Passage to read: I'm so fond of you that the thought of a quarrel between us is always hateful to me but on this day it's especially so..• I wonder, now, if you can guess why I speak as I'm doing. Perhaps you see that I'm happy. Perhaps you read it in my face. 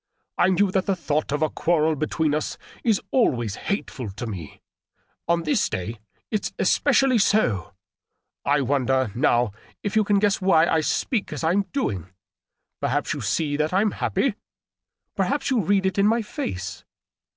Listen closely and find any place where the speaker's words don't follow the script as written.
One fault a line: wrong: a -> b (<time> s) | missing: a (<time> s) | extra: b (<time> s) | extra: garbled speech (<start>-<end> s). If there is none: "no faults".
missing: so fond of (0.6 s)
missing: but (4.6 s)